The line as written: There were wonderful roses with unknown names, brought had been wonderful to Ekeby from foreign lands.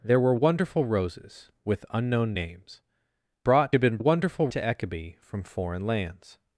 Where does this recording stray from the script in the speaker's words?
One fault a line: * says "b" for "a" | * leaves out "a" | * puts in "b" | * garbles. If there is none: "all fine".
all fine